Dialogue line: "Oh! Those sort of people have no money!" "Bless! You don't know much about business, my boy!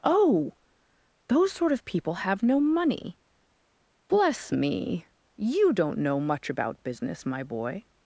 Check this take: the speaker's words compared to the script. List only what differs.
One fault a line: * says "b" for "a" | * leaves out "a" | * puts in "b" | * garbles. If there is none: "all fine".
* puts in "me"